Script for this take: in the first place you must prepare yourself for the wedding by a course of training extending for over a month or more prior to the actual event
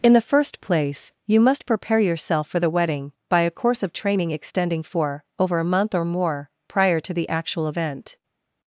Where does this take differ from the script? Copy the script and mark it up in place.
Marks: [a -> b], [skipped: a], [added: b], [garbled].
in the first place you must prepare yourself for the wedding by a course of training extending for over a month or more prior to the actual event